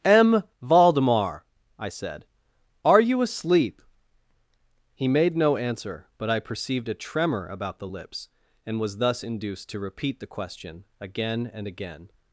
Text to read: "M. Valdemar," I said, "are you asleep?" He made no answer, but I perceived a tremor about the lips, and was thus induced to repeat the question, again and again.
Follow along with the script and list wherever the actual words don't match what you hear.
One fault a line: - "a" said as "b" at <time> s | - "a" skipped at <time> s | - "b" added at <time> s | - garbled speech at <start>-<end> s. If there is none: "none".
none